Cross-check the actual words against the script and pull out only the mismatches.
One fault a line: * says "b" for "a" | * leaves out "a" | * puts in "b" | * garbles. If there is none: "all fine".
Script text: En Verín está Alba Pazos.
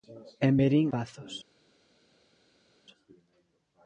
* leaves out "está Alba"